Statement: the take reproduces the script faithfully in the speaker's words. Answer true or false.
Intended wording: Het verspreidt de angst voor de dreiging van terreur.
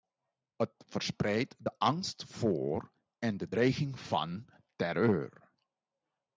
false